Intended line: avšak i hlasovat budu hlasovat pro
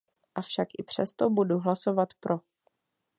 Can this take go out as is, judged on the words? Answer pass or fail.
fail